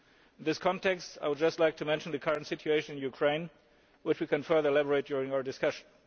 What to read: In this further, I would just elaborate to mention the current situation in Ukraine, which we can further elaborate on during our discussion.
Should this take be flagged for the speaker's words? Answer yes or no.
yes